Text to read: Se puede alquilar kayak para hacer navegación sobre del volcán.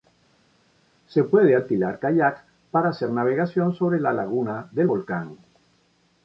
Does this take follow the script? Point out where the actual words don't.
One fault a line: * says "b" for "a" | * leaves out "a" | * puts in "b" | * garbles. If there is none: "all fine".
* puts in "la laguna"